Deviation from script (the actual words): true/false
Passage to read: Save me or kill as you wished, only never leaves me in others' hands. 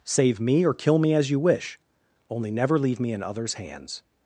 true